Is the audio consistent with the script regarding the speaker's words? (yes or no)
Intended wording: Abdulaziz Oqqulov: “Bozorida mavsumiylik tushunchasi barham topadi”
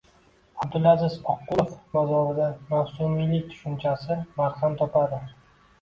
yes